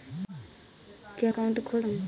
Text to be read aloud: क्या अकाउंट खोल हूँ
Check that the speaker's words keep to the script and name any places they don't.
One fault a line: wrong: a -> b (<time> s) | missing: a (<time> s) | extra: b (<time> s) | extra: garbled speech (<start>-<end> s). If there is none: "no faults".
no faults